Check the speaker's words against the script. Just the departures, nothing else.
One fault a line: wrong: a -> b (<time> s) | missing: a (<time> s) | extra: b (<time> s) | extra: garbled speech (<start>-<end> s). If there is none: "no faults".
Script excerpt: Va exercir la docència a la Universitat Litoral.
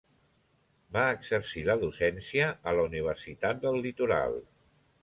extra: del (3.7 s)